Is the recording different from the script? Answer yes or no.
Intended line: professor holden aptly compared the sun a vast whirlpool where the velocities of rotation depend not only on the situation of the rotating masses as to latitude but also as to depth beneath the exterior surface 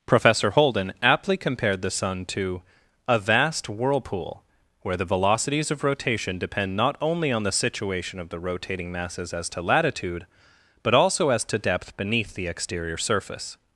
yes